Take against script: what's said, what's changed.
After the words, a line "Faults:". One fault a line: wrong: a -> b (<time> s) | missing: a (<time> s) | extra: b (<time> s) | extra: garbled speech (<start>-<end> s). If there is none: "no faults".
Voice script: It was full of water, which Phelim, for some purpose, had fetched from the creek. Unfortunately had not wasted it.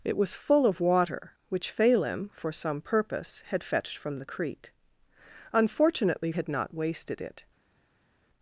It was full of water, which Phelim, for some purpose, had fetched from the creek. Unfortunately had not wasted it.
Faults:
no faults